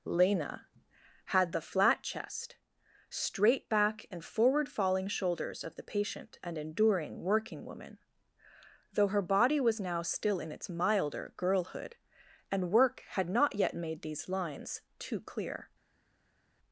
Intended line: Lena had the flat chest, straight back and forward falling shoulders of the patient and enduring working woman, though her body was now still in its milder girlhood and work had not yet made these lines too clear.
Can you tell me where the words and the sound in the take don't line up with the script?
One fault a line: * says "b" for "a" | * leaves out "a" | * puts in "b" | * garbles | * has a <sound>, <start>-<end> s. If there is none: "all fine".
all fine